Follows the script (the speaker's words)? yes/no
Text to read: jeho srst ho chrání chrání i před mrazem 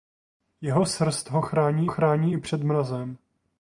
yes